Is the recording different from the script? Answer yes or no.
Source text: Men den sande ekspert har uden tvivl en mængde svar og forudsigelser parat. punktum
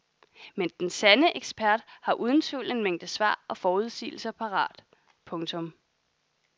no